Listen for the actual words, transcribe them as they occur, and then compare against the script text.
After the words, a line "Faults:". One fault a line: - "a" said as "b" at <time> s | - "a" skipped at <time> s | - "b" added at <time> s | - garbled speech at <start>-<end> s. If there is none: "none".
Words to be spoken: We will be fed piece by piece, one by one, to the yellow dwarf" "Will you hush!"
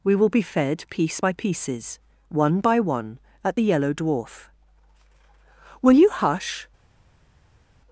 We will be fed piece by pieces, one by one, at the yellow dwarf" "Will you hush!"
Faults:
- "piece" said as "pieces" at 1.3 s
- "to" said as "at" at 3.4 s